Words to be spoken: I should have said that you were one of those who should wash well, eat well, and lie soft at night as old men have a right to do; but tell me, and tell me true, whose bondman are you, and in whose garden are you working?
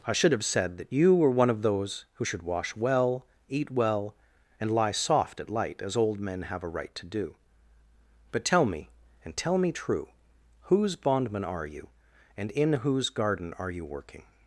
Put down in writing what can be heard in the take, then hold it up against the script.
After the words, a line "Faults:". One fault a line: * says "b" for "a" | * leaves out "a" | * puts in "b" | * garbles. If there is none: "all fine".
I should have said that you were one of those who should wash well, eat well, and lie soft at light as old men have a right to do; but tell me, and tell me true, whose bondman are you, and in whose garden are you working?
Faults:
* says "light" for "night"